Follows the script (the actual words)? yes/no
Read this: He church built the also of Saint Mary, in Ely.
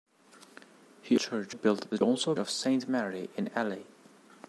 yes